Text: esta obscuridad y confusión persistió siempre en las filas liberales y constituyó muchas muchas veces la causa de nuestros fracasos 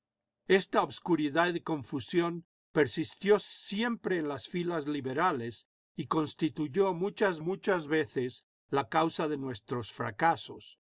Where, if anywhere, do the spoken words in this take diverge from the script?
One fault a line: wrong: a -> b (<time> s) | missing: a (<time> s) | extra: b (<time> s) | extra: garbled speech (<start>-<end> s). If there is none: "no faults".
no faults